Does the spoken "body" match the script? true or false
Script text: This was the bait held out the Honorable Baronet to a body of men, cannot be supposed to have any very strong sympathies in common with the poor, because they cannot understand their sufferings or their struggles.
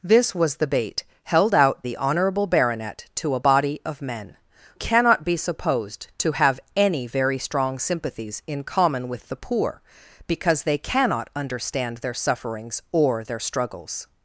true